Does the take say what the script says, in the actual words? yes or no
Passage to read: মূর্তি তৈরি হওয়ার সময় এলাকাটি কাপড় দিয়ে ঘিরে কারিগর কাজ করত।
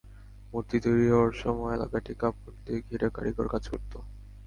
yes